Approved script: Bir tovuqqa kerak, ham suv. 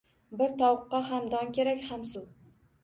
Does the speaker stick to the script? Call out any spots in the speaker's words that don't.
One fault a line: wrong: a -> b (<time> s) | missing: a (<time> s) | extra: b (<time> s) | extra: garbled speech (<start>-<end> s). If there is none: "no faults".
extra: ham don (1.1 s)